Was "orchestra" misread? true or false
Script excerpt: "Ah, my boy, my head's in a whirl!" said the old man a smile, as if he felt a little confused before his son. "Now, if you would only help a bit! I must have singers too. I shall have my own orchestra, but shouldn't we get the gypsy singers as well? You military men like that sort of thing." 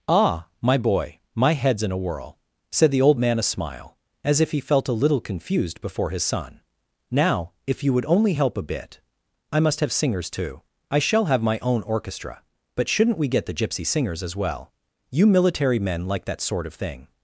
false